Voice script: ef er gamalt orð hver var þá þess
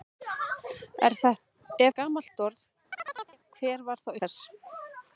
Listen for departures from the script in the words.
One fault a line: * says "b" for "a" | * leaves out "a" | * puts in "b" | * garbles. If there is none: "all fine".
all fine